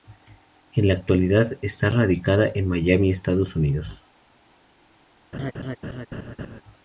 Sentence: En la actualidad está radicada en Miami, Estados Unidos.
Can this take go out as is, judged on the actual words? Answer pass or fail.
pass